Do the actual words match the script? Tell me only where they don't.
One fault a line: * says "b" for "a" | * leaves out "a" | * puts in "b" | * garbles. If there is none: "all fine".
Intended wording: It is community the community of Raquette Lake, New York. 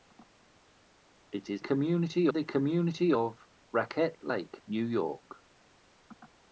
all fine